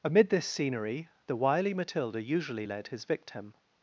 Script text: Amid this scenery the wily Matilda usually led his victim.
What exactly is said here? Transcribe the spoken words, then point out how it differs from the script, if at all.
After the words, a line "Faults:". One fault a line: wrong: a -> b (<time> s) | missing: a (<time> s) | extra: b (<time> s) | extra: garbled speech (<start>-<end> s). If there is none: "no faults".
Amid this scenery the wily Matilda usually led his victim.
Faults:
no faults